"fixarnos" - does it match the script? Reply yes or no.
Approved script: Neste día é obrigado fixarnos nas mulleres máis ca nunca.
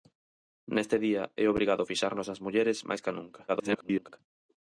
yes